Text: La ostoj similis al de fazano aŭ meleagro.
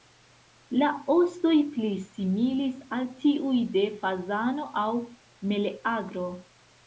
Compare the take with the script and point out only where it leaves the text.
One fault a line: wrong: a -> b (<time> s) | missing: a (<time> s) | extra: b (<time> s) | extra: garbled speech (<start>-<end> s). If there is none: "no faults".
extra: pli (1.8 s)
extra: tiuj (3.2 s)